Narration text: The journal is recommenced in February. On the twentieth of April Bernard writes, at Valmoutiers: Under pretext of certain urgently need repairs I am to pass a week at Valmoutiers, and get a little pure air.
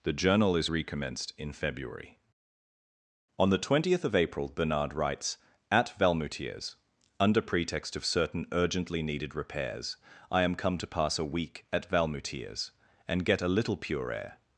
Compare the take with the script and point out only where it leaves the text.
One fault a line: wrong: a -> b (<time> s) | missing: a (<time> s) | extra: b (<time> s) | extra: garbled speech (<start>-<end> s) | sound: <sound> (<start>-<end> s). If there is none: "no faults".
wrong: need -> needed (9.0 s)
extra: come (10.5 s)